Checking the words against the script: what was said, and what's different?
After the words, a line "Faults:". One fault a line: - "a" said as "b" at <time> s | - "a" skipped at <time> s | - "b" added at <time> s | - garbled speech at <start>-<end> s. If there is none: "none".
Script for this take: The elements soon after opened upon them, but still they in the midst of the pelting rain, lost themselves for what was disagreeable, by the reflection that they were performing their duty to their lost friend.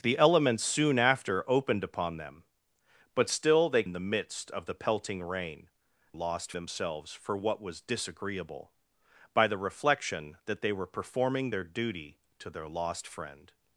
The elements soon after opened upon them, but still they in the midst of the pelting rain, lost themselves for what was disagreeable, by the reflection that they were performing their duty to their lost friend.
Faults:
none